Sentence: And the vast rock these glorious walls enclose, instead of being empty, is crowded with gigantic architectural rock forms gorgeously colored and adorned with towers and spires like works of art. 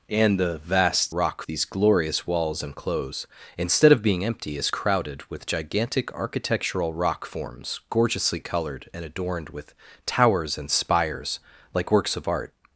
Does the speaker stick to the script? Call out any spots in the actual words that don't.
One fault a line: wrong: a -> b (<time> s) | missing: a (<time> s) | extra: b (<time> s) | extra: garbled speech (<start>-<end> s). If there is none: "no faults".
no faults